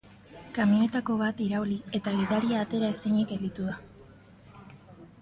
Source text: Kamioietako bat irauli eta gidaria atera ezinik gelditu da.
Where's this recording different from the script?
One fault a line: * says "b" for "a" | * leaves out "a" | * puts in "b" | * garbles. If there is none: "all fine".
all fine